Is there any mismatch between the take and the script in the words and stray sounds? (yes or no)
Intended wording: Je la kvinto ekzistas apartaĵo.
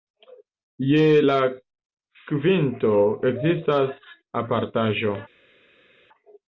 no